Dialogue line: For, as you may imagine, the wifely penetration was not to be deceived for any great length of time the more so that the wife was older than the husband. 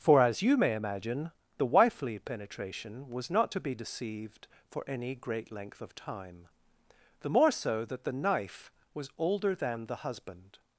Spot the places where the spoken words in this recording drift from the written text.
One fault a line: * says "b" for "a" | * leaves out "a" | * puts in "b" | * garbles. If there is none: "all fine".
* says "knife" for "wife"